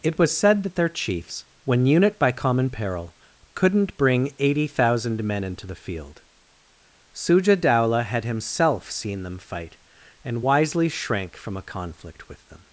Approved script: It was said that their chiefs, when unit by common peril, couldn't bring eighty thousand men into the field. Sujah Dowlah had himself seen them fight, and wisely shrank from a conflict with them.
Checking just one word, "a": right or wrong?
right